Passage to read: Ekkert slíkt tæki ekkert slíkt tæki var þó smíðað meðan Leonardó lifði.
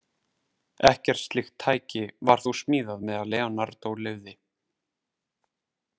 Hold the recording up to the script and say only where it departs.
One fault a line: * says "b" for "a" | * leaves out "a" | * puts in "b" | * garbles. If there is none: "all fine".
* leaves out "ekkert slíkt tæki"